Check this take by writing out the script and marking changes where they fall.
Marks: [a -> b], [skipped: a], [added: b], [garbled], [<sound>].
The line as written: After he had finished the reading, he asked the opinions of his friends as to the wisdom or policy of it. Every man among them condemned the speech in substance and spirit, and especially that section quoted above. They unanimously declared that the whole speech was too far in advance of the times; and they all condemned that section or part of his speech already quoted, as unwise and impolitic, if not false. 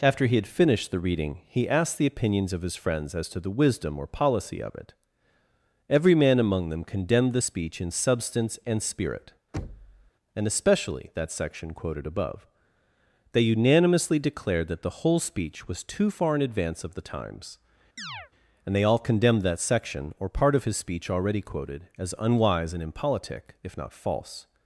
After he had finished the reading, he asked the opinions of his friends as to the wisdom or policy of it. Every man among them condemned the speech in substance and spirit, [thud] and especially that section quoted above. They unanimously declared that the whole speech was too far in advance of the times; [chirp] and they all condemned that section or part of his speech already quoted, as unwise and impolitic, if not false.